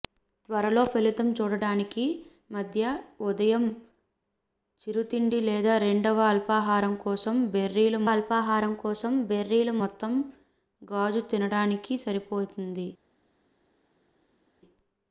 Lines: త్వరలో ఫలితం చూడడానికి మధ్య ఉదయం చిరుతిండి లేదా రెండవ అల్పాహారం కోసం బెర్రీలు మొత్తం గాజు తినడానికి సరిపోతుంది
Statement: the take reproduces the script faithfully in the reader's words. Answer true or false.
false